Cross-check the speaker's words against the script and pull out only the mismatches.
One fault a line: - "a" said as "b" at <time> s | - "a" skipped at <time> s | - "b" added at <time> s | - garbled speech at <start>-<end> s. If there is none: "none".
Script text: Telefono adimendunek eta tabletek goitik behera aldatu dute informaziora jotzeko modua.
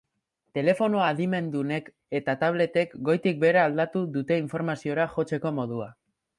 none